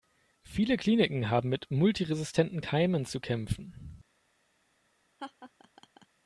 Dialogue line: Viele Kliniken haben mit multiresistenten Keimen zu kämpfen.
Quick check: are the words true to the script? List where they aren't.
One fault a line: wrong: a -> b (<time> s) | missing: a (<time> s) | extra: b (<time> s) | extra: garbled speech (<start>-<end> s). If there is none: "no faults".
no faults